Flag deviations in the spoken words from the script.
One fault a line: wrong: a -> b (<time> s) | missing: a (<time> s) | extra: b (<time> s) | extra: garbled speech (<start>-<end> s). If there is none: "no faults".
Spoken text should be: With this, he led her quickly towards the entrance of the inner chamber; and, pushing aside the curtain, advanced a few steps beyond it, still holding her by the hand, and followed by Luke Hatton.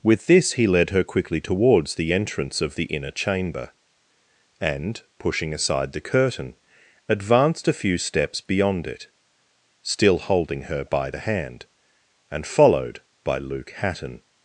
no faults